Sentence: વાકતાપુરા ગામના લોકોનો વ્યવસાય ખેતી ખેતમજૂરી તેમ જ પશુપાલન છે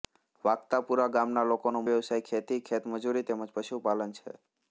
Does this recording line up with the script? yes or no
yes